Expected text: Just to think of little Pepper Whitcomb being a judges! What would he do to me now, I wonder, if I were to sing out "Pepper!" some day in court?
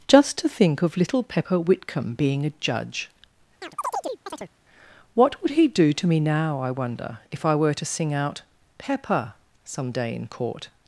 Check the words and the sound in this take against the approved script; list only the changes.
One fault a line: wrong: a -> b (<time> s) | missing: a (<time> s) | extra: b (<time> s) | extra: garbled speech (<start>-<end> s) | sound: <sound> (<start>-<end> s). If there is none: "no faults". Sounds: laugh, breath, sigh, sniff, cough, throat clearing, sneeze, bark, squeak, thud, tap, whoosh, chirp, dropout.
wrong: judges -> judge (2.6 s)
sound: chirp (3.6-4.5 s)